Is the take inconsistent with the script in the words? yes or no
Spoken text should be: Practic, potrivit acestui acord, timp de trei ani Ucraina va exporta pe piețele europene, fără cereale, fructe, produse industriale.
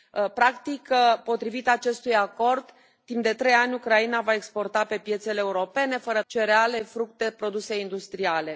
no